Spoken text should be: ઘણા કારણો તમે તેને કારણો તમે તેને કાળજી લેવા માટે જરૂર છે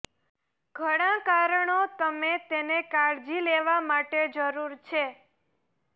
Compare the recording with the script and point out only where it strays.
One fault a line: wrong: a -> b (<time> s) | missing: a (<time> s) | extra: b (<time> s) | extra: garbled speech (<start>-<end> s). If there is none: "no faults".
missing: કારણો તમે તેને (2.8 s)